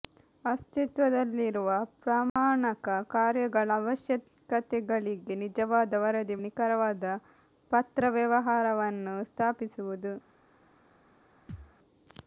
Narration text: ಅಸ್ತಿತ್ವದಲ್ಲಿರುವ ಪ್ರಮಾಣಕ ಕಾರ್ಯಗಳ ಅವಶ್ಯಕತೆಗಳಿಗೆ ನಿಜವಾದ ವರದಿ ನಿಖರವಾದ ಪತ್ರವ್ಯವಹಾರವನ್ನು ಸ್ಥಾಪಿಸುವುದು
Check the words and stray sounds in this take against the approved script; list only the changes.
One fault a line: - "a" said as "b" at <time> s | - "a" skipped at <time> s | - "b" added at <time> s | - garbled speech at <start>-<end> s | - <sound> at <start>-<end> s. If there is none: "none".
- dropout at 2.3-2.4 s
- thud at 11.5-11.7 s